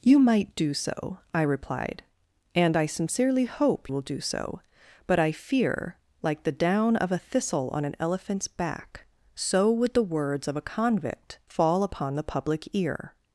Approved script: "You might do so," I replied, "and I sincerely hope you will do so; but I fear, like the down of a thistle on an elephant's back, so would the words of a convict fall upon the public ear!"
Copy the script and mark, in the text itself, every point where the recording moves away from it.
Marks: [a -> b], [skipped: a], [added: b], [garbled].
"You might do so," I replied, "and I sincerely hope [skipped: you] will do so; but I fear, like the down of a thistle on an elephant's back, so would the words of a convict fall upon the public ear!"